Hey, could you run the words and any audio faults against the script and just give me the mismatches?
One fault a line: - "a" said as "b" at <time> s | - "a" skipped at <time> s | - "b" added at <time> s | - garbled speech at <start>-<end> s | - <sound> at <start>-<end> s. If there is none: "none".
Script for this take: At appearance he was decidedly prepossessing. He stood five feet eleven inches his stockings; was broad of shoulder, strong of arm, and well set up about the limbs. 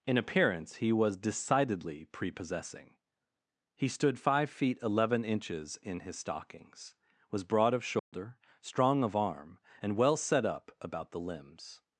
- "At" said as "In" at 0.1 s
- "in" added at 5.8 s
- dropout at 8.0-8.1 s